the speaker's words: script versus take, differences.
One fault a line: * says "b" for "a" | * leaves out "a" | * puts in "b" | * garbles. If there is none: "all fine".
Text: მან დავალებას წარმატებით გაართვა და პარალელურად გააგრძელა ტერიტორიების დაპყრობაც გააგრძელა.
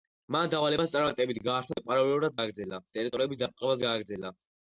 all fine